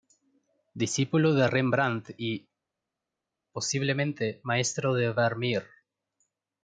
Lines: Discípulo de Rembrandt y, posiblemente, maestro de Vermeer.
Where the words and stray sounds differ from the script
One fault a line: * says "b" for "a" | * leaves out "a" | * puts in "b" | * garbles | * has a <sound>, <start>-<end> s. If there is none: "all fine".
all fine